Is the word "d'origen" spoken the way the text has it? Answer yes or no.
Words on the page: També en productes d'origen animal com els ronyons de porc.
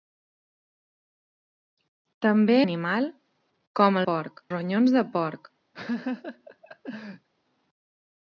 no